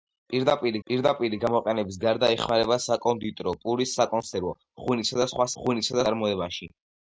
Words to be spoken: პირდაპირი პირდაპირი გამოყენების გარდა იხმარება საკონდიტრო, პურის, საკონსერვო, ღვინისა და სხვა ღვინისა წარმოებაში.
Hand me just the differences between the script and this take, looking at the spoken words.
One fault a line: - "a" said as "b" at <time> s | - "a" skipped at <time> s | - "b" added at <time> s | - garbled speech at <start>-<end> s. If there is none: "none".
none